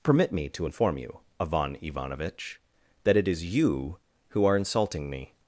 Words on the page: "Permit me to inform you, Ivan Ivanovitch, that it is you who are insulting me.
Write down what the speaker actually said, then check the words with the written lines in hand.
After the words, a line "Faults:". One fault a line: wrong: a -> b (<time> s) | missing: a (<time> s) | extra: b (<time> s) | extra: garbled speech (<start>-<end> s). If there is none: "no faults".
"Permit me to inform you, Ivan Ivanovitch, that it is you who are insulting me.
Faults:
no faults